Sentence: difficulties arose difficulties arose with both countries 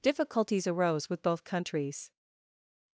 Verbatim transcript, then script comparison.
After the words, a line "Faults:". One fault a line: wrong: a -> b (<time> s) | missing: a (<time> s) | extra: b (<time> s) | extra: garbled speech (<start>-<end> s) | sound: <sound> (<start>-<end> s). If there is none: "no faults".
difficulties arose with both countries
Faults:
missing: difficulties arose (1.1 s)